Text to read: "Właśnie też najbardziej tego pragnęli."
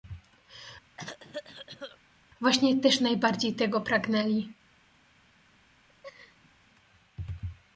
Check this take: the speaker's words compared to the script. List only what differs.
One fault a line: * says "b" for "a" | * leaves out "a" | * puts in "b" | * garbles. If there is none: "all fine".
all fine